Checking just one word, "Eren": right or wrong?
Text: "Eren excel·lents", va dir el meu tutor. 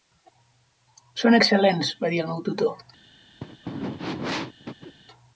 wrong